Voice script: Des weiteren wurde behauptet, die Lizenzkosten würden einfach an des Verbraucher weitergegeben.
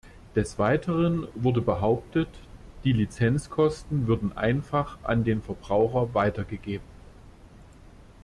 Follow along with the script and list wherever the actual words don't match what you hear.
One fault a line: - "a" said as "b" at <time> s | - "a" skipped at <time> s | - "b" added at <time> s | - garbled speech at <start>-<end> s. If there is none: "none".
- "des" said as "den" at 5.2 s